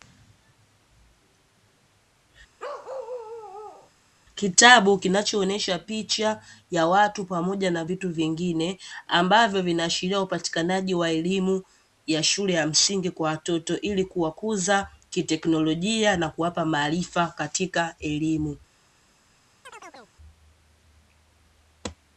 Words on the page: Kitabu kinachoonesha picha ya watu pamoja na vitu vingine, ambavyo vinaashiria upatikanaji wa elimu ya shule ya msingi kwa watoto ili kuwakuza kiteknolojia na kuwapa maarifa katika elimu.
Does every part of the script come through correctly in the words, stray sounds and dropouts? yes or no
no